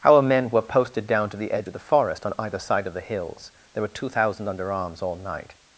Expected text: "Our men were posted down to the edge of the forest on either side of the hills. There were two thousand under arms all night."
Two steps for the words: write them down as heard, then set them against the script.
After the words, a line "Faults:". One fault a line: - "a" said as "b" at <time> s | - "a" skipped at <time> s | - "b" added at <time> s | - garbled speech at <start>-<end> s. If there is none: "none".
"Our men were posted down to the edge of the forest on either side of the hills. There were two thousand under arms all night."
Faults:
none